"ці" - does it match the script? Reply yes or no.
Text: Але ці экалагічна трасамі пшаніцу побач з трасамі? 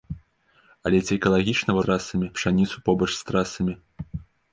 yes